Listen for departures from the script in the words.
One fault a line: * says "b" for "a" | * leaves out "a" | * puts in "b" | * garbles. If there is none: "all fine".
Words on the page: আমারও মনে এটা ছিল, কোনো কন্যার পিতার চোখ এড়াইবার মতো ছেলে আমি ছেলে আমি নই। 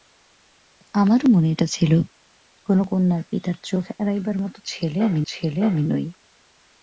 all fine